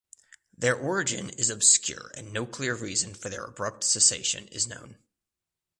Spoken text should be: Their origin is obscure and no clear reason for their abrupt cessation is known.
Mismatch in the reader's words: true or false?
false